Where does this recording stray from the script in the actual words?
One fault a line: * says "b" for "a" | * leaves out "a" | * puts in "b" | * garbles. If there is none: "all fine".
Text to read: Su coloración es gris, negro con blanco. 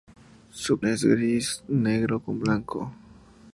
* leaves out "coloración"